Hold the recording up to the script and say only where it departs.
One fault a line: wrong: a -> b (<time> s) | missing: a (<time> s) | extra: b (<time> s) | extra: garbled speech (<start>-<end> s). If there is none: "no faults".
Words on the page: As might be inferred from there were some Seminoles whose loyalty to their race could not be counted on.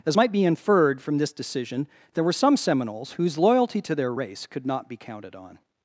extra: this decision (1.2 s)